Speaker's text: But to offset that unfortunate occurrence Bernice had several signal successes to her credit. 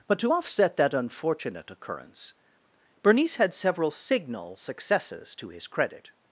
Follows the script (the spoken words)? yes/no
no